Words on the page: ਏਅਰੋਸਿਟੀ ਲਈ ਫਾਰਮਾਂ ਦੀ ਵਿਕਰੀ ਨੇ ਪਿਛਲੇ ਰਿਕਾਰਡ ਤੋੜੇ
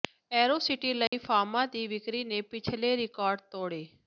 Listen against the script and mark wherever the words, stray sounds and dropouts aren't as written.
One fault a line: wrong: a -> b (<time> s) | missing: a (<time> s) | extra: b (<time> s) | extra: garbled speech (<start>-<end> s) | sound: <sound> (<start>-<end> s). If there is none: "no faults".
sound: dropout (1.1-1.1 s)